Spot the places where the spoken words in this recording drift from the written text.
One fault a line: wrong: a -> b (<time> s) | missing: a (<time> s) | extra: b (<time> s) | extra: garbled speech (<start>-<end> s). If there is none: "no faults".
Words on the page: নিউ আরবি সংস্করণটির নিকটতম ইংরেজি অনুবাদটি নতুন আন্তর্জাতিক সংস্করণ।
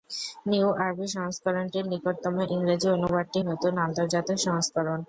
no faults